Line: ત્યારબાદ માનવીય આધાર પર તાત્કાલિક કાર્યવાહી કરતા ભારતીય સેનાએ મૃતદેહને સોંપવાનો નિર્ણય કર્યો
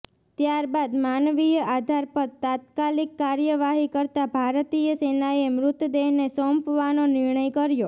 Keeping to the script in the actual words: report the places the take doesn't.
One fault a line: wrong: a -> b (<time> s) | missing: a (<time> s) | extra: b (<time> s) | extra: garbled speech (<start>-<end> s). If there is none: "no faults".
no faults